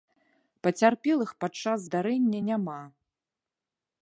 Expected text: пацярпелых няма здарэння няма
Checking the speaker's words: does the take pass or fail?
fail